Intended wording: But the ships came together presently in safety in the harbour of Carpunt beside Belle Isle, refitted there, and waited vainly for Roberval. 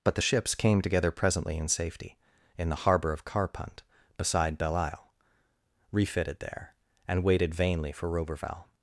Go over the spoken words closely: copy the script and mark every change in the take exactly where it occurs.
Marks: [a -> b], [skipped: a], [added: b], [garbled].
But the ships came together presently in safety in the harbour of Carpunt beside Belle Isle, refitted there, and waited vainly for Roberval.